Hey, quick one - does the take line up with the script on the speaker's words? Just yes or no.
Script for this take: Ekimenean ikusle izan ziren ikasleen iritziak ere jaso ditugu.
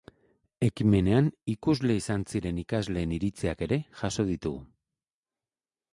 yes